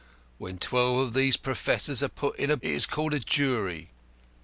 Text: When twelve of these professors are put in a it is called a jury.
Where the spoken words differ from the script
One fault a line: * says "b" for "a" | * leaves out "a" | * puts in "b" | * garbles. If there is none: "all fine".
all fine